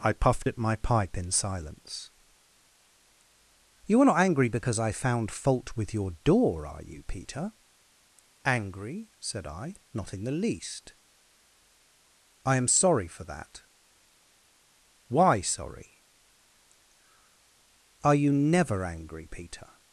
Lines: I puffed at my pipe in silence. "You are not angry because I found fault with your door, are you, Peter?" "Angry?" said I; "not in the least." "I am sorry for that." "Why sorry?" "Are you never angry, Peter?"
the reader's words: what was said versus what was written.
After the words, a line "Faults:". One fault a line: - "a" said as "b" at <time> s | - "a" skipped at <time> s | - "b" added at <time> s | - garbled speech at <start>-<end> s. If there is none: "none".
I puffed at my pipe in silence. "You are not angry because I found fault with your door, are you, Peter?" "Angry?" said I; "not in the least." "I am sorry for that." "Why sorry?" "Are you never angry, Peter?"
Faults:
none